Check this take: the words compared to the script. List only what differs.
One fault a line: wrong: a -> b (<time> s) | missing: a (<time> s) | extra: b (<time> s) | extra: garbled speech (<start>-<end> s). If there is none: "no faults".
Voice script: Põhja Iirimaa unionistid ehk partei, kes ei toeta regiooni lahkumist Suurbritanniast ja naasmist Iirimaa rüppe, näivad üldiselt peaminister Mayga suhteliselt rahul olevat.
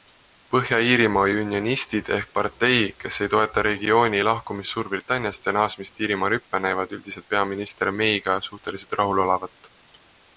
no faults